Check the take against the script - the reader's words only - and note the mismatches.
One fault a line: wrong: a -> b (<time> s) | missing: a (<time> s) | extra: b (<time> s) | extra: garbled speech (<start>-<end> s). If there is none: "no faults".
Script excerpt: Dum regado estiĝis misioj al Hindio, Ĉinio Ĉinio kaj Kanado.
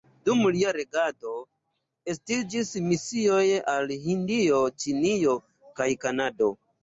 extra: lia (0.5 s)
missing: Ĉinio (5.4 s)